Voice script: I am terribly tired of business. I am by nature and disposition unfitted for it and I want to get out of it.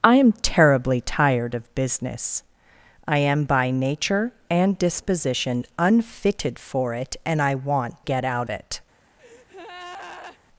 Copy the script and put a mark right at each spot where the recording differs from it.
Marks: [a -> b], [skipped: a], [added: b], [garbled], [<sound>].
I am terribly tired of business. I am by nature and disposition unfitted for it and I want [skipped: to] get out [skipped: of] it. [breath]